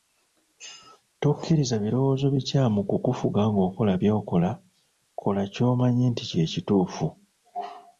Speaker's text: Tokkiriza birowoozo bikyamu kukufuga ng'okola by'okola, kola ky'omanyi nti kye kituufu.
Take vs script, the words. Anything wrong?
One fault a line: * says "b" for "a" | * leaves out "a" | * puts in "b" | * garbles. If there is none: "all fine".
all fine